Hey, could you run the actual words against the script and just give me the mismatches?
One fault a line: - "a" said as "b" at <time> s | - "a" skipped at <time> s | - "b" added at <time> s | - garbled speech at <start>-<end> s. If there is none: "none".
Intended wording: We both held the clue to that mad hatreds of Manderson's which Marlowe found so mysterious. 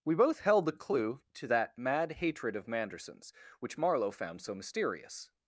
- "hatreds" said as "hatred" at 2.1 s